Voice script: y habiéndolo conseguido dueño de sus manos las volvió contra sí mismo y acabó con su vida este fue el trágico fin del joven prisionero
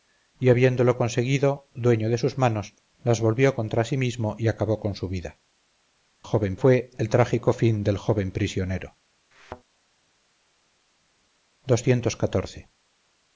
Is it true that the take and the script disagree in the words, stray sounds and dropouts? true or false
true